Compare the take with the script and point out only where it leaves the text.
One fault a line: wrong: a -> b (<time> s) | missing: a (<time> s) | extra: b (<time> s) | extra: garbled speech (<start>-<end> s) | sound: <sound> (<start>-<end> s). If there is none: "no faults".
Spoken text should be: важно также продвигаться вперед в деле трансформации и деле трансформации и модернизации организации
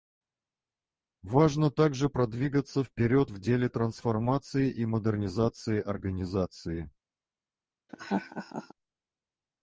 missing: деле трансформации и (4.9 s)
sound: laugh (7.9-8.7 s)